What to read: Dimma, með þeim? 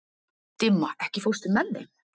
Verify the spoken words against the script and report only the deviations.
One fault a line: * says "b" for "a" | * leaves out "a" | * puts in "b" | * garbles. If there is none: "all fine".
* puts in "ekki fórstu"